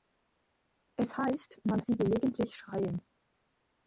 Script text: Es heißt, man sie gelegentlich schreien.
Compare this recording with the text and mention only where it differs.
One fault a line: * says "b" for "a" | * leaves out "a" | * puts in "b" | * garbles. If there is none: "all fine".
all fine